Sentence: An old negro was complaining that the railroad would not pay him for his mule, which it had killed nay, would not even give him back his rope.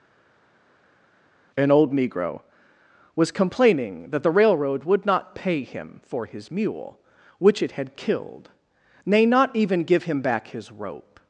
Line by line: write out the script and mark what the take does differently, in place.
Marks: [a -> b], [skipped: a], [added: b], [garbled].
An old negro was complaining that the railroad would not pay him for his mule, which it had killed nay, [skipped: would] not even give him back his rope.